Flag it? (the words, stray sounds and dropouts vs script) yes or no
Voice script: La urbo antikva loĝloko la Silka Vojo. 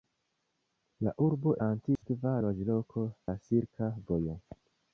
yes